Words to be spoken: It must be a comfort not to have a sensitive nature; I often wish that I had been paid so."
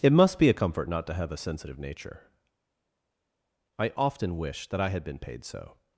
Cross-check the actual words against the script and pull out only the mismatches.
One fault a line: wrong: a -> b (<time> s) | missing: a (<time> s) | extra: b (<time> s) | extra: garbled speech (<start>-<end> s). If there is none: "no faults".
no faults